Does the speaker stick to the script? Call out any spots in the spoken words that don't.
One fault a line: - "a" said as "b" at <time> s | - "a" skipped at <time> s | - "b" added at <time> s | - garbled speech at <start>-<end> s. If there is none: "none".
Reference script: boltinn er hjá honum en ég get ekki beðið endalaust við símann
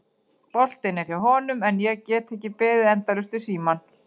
none